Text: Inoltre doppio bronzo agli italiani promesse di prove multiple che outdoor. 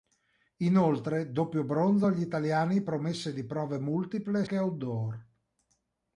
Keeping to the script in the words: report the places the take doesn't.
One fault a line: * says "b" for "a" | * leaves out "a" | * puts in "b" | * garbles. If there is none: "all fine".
all fine